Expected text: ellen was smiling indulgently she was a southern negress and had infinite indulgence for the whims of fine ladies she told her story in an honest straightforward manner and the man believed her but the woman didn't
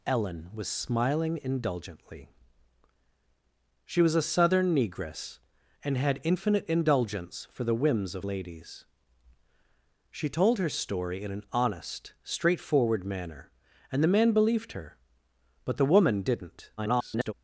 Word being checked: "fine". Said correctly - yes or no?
no